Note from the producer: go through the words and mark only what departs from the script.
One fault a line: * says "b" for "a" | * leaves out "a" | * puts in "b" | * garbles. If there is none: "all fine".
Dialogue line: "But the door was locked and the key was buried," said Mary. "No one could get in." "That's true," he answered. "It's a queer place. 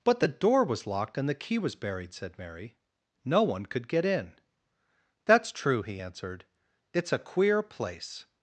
all fine